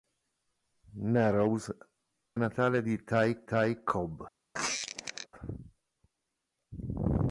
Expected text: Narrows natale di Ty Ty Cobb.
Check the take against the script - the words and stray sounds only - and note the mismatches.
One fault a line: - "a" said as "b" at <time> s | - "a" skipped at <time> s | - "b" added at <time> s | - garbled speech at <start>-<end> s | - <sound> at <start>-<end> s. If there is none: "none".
- squeak at 4.5-5.3 s